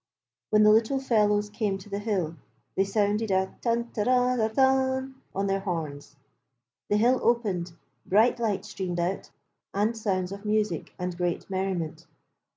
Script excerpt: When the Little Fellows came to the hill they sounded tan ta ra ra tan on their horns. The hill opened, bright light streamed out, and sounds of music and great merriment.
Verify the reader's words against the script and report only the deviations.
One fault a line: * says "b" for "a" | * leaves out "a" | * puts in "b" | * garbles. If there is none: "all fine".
* puts in "a"